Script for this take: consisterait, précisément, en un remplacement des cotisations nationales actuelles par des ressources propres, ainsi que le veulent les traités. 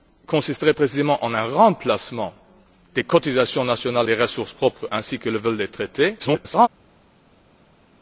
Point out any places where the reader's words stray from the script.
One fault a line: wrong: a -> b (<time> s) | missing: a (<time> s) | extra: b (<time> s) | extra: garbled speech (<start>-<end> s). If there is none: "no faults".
missing: actuelles par (4.1 s)
extra: garbled speech (6.2-6.7 s)